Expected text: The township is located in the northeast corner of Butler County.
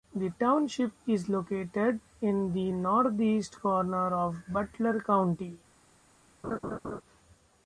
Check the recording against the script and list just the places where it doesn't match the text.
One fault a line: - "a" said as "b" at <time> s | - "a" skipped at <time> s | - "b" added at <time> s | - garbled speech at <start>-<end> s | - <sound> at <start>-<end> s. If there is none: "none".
- laugh at 6.4-7.0 s